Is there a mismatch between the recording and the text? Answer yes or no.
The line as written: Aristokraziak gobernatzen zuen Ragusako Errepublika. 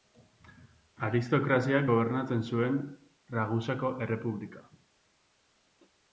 no